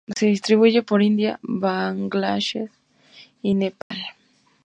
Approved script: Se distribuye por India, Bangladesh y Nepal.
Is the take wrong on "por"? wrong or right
right